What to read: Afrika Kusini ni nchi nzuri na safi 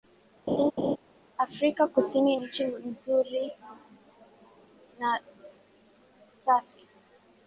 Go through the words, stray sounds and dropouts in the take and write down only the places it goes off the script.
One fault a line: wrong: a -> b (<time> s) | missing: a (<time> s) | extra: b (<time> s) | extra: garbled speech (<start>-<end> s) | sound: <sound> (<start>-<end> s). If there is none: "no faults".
sound: laugh (0.5-1.0 s)
missing: ni (2.4 s)